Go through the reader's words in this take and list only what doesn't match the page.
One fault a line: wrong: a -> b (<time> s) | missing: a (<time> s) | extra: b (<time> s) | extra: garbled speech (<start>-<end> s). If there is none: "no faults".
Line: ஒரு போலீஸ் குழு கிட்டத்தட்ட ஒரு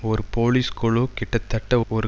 no faults